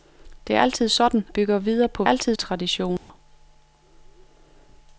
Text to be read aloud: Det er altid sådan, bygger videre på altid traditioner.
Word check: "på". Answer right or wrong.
right